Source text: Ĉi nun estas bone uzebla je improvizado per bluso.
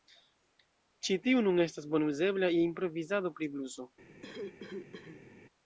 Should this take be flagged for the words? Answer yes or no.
yes